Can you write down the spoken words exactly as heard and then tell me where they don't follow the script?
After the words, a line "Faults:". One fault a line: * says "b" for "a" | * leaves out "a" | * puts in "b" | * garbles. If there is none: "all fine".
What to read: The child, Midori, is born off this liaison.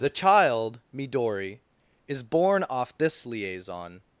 The child, Midori, is born off this liaison.
Faults:
all fine